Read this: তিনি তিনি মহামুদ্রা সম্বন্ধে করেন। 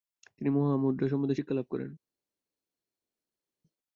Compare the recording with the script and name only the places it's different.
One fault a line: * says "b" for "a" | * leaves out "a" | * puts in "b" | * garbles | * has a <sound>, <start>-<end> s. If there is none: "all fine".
* leaves out "তিনি"
* puts in "শিক্ষালাভ"